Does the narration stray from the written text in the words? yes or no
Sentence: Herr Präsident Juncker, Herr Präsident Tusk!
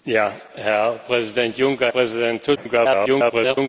yes